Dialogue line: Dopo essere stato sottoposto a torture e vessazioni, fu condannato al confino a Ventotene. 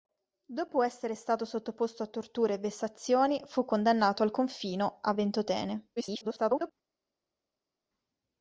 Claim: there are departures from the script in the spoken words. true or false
true